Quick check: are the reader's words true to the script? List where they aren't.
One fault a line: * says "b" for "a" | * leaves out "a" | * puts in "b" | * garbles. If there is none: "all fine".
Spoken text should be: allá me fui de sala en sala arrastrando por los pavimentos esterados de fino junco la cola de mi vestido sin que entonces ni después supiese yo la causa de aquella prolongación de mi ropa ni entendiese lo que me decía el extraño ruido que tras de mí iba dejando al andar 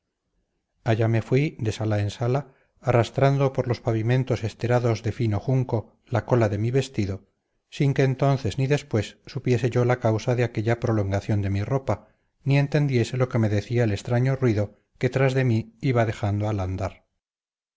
all fine